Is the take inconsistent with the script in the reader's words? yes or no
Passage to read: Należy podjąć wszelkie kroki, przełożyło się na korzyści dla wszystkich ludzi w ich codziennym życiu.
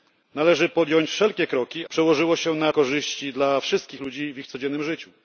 no